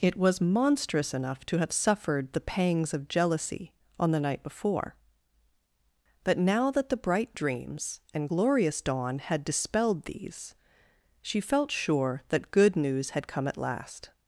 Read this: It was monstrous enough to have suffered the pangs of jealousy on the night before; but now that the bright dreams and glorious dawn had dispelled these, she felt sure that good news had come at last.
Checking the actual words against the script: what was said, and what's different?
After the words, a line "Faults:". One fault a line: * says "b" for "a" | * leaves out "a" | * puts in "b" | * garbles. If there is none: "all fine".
It was monstrous enough to have suffered the pangs of jealousy on the night before; but now that the bright dreams and glorious dawn had dispelled these, she felt sure that good news had come at last.
Faults:
all fine